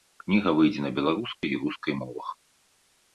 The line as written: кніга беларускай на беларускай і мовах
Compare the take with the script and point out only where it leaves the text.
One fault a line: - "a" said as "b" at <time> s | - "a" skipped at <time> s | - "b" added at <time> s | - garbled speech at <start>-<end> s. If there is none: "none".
- "беларускай" said as "выйдзе" at 0.6 s
- "рускай" added at 1.6 s